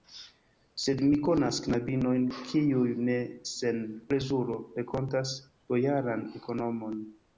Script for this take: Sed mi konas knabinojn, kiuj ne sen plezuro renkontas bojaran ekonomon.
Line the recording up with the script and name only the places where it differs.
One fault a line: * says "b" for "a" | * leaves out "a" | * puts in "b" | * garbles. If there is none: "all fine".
all fine